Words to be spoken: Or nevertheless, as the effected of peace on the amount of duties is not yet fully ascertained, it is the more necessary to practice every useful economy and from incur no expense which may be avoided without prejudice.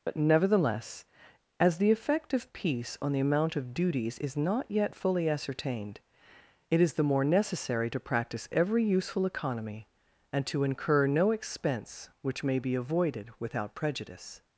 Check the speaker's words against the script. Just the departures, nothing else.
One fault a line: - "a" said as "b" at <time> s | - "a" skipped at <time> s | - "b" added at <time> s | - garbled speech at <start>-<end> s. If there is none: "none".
- "Or" said as "But" at 0.0 s
- "effected" said as "effect" at 1.9 s
- "from" said as "to" at 10.5 s